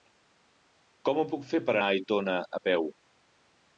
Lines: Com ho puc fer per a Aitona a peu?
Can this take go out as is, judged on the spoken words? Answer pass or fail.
pass